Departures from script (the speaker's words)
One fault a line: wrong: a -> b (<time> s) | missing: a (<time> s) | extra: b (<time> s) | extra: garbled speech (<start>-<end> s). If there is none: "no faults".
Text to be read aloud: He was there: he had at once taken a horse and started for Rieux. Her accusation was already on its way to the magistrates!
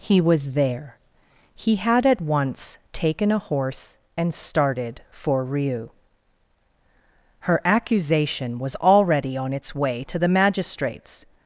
no faults